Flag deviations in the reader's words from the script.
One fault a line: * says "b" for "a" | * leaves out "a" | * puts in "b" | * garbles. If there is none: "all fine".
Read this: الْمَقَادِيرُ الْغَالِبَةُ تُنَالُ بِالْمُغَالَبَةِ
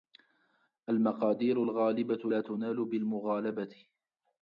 * puts in "لَا"